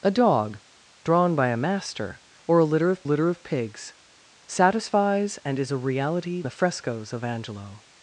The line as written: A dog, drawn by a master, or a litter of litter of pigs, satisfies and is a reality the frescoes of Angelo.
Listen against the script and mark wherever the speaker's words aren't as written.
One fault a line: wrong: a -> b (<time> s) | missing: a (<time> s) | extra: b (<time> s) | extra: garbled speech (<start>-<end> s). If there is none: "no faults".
no faults